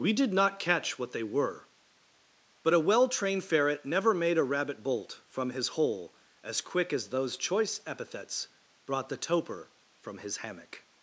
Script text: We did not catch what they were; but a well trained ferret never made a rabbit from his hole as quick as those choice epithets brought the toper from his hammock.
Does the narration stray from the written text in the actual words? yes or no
yes